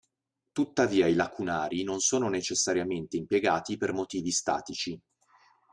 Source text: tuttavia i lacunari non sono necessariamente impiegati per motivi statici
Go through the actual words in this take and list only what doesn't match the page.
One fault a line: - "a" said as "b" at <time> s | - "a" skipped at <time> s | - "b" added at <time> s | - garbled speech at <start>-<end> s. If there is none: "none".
none